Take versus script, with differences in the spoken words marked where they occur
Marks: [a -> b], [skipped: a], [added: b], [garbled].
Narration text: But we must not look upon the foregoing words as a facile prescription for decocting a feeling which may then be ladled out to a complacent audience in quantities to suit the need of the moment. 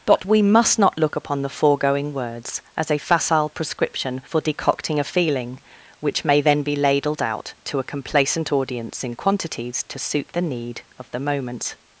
But we must not look upon the foregoing words as a facile prescription for decocting a feeling which may then be ladled out to a complacent audience in quantities to suit the need of the moment.